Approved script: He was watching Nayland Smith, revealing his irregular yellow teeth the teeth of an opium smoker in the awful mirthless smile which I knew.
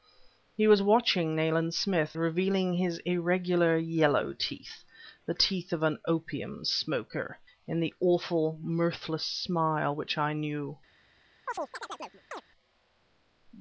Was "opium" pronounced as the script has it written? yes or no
yes